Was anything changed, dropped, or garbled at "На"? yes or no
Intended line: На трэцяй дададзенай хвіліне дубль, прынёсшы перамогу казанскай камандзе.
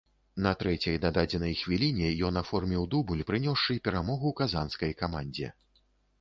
no